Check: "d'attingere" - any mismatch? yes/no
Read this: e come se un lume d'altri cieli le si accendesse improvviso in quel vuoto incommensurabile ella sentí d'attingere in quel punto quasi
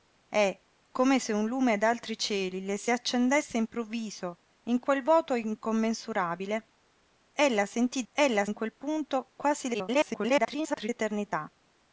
yes